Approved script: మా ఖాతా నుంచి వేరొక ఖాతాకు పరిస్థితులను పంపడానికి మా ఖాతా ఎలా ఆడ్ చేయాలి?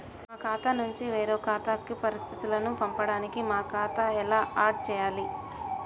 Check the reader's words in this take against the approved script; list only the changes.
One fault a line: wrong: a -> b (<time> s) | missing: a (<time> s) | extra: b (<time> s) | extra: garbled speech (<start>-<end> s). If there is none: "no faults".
no faults